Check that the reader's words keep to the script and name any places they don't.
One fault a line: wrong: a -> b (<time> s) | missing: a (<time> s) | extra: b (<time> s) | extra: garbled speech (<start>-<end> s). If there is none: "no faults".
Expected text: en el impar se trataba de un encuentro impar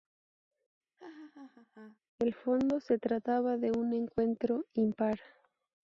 wrong: impar -> fondo (2.3 s)